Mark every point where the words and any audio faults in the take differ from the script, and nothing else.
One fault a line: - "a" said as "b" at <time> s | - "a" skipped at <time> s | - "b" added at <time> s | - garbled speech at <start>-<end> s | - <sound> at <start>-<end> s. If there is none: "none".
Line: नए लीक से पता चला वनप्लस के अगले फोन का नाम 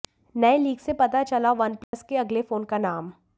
- dropout at 1.8-1.9 s